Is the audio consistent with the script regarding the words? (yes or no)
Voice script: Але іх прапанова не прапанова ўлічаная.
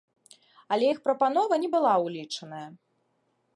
no